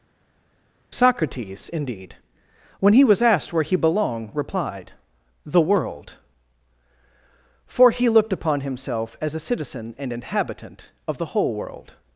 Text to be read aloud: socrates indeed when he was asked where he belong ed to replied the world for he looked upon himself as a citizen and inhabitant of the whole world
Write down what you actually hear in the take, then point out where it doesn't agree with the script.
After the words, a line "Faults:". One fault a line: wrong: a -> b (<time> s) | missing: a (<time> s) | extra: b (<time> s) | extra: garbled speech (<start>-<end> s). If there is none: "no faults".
socrates indeed when he was asked where he belonged replied the world for he looked upon himself as a citizen and inhabitant of the whole world
Faults:
wrong: belong ed to -> belonged (3.8 s)